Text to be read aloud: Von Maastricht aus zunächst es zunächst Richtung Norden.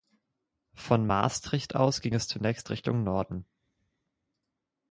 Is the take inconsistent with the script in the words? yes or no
yes